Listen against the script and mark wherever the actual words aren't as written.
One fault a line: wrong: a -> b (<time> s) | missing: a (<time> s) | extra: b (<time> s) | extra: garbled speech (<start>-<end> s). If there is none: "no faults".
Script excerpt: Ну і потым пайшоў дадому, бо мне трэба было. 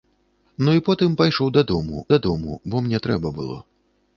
extra: дадому (2.2 s)